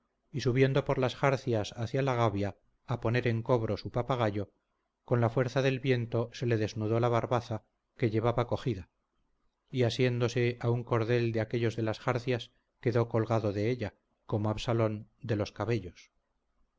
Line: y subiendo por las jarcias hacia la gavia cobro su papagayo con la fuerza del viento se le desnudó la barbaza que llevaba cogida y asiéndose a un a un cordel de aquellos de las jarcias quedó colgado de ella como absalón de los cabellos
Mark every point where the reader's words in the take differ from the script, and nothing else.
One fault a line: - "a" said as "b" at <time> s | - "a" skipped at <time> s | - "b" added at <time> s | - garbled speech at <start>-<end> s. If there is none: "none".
- "a poner en" added at 2.9 s
- "a un" skipped at 10.8 s